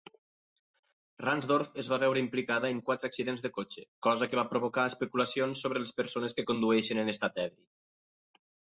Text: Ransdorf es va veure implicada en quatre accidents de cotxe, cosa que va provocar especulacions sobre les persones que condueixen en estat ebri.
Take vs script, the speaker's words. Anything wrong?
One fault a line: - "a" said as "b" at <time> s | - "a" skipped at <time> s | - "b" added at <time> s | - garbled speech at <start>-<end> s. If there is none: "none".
none